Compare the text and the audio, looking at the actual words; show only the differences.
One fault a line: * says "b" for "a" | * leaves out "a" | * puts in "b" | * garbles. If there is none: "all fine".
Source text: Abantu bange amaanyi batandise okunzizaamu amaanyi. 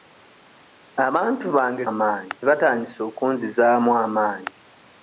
all fine